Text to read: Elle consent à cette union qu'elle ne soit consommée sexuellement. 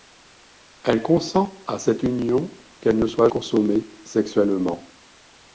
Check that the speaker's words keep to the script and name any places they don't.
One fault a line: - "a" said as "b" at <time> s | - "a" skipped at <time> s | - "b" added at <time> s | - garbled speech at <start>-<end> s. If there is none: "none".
none